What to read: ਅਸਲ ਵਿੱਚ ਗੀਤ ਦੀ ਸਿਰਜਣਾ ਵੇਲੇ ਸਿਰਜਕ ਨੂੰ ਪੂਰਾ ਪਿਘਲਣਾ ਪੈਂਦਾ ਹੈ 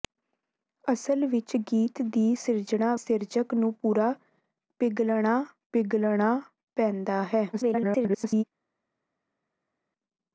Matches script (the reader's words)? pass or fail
fail